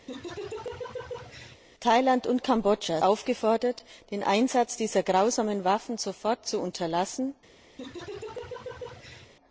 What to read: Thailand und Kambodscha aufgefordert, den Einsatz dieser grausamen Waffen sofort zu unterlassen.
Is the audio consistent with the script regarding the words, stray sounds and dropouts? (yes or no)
no